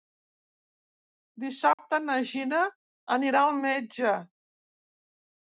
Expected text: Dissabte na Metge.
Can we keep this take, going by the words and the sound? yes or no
no